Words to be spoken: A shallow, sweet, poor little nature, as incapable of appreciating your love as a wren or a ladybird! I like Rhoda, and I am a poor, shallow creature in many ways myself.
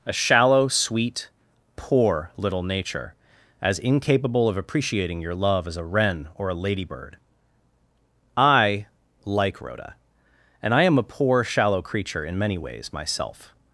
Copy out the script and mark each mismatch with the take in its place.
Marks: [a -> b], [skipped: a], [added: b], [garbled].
A shallow, sweet, poor little nature, as incapable of appreciating your love as a wren or a ladybird! I like Rhoda, and I am a poor, shallow creature in many ways myself.